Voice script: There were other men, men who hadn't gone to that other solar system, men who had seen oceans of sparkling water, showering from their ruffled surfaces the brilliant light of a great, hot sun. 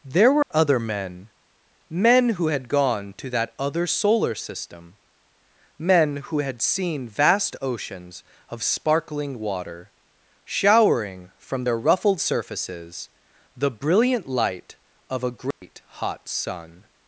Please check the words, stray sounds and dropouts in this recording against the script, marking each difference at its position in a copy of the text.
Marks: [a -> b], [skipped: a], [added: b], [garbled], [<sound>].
There were [dropout] other men, men who [hadn't -> had] gone to that other solar system, men who had seen [added: vast] oceans of sparkling water, showering from their ruffled surfaces the brilliant light of a great, [dropout] hot sun.